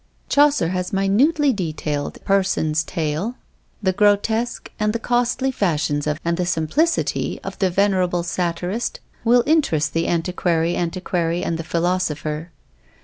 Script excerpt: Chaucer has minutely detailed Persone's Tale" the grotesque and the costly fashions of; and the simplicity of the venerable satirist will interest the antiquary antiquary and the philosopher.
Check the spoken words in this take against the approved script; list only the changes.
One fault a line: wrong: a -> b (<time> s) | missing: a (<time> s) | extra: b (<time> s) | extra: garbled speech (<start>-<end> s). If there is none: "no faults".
no faults